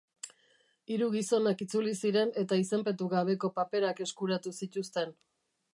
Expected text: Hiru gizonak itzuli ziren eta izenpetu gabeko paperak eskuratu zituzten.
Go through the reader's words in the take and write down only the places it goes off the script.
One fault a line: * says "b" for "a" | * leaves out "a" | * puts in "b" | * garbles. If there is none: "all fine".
all fine